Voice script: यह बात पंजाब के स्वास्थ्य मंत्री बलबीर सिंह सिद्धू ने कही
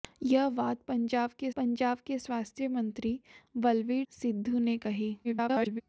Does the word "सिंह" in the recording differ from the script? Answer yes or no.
yes